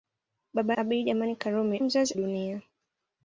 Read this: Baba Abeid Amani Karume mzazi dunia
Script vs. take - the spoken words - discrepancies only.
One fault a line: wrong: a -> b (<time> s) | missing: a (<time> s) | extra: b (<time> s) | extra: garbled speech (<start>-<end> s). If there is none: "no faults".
no faults